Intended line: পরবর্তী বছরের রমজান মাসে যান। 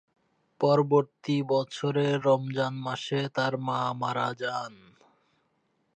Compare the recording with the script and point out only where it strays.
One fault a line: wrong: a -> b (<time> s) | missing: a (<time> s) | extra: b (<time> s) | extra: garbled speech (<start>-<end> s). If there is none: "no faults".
extra: তার মা মারা (3.4 s)